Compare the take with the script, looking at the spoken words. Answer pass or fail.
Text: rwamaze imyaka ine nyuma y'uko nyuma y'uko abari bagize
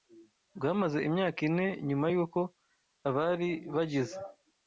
fail